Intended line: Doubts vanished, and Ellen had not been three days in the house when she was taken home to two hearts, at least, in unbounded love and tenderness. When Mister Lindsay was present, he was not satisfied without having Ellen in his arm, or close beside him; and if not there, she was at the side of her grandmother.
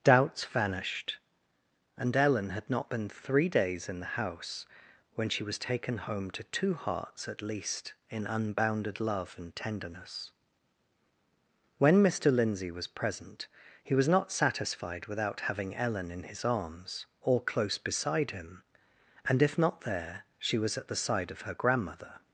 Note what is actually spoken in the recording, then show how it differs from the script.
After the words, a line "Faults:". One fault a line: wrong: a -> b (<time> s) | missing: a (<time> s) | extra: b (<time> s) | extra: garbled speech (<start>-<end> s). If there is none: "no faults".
Doubts vanished, and Ellen had not been three days in the house when she was taken home to two hearts, at least, in unbounded love and tenderness. When Mister Lindsay was present, he was not satisfied without having Ellen in his arms, or close beside him; and if not there, she was at the side of her grandmother.
Faults:
wrong: arm -> arms (16.5 s)